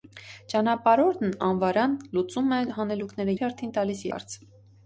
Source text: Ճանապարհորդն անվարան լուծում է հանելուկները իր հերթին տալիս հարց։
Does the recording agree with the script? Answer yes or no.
yes